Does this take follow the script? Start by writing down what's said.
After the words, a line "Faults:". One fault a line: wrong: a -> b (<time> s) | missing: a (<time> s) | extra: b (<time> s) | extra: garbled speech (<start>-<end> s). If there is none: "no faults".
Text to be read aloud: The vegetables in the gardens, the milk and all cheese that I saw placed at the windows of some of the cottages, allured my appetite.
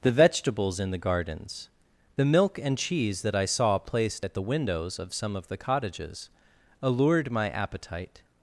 The vegetables in the gardens, the milk and cheese that I saw placed at the windows of some of the cottages, allured my appetite.
Faults:
missing: all (2.8 s)